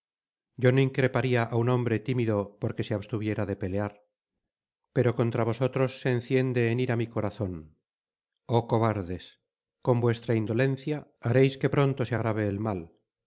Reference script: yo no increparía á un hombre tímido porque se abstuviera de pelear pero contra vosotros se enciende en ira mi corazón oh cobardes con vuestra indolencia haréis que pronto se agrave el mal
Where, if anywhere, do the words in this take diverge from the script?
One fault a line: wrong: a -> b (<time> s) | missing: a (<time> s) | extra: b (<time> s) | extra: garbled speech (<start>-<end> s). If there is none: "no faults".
no faults